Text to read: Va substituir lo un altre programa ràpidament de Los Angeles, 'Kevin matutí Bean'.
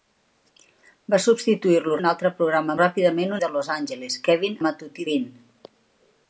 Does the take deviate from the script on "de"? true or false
false